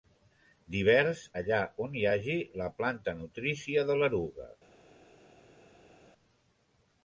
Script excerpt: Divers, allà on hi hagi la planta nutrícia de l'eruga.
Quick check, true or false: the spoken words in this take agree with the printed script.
true